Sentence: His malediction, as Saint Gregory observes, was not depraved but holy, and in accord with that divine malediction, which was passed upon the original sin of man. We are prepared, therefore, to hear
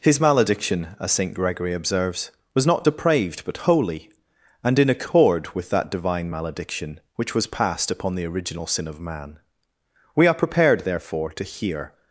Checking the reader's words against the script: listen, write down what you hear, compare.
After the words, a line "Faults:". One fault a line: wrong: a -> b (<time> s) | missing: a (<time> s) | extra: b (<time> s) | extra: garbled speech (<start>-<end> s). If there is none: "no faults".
His malediction, as Saint Gregory observes, was not depraved but holy, and in accord with that divine malediction, which was passed upon the original sin of man. We are prepared, therefore, to hear
Faults:
no faults